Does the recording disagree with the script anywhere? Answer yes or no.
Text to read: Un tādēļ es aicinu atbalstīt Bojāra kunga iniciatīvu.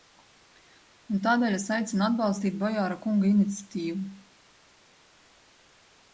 no